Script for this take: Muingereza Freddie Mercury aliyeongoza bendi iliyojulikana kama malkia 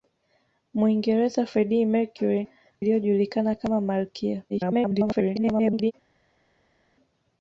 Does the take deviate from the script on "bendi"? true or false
true